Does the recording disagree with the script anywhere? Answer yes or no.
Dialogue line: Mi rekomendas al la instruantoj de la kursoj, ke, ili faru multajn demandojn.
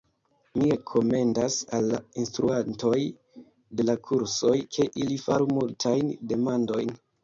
no